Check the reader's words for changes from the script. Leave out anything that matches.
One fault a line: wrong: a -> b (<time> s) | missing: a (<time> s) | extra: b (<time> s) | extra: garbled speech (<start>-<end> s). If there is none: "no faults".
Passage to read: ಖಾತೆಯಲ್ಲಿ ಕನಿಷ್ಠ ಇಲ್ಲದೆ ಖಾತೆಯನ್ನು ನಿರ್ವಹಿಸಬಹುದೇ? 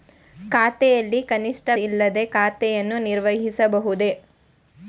no faults